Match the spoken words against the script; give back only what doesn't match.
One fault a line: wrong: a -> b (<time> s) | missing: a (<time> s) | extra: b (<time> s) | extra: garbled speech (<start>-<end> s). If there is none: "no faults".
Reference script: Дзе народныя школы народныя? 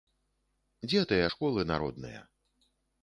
wrong: народныя -> тыя (1.1 s)